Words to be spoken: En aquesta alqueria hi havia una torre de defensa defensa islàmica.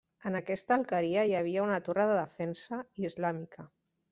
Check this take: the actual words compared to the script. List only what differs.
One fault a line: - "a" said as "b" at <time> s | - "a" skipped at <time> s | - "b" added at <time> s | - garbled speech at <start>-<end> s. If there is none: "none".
- "defensa" skipped at 2.8 s